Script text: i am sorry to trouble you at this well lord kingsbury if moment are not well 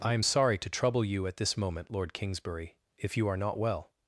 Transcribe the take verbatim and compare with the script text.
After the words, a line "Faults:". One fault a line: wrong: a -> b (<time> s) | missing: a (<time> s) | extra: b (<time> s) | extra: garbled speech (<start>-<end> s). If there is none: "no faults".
i am sorry to trouble you at this moment lord kingsbury if you are not well
Faults:
wrong: well -> moment (1.6 s)
wrong: moment -> you (3.2 s)